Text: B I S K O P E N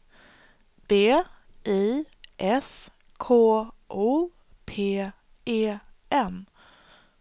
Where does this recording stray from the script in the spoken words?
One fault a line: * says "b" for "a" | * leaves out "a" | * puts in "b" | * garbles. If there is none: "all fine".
all fine